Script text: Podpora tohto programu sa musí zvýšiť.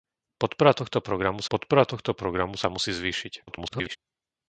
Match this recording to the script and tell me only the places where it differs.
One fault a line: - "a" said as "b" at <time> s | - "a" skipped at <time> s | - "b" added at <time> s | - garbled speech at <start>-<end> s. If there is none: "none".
- "podpora tohto programu" added at 1.5 s
- garbled speech at 3.5-4.0 s